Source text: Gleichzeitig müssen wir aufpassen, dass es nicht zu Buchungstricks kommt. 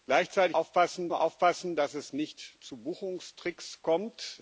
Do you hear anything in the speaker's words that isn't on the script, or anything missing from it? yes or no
yes